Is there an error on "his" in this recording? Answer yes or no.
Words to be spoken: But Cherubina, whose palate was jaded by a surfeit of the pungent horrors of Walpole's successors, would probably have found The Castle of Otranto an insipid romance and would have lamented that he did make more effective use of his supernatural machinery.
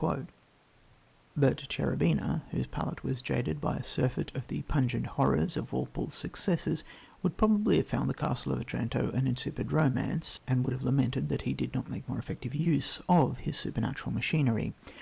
no